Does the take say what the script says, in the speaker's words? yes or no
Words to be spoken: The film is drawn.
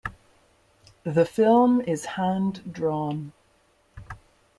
no